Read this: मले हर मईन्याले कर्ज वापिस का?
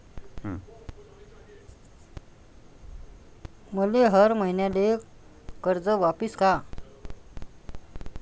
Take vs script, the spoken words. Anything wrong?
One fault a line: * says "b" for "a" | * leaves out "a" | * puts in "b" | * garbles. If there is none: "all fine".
all fine